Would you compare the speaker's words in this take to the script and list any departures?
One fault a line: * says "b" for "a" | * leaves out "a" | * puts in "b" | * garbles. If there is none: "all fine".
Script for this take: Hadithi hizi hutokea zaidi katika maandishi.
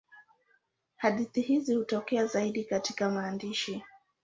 all fine